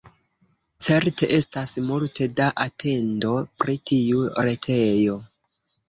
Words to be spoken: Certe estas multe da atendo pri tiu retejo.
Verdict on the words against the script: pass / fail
pass